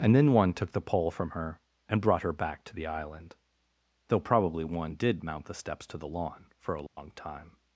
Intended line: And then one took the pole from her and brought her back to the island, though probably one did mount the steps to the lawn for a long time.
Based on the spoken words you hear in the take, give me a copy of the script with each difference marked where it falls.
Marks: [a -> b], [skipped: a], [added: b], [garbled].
And then one took the pole from her and brought her back to the island, though probably one did mount the steps to the lawn for a long time.